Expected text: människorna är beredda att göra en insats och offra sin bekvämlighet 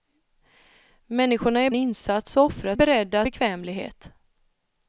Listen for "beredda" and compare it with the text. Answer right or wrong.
wrong